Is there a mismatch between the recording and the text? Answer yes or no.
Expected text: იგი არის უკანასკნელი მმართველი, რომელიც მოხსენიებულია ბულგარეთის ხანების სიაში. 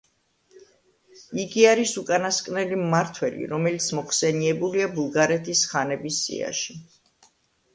no